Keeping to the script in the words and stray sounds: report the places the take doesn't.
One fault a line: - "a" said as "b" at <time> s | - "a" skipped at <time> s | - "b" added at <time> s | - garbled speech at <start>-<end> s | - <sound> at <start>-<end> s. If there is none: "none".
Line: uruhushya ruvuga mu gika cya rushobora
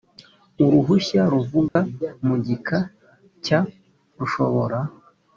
- dropout at 1.7-1.8 s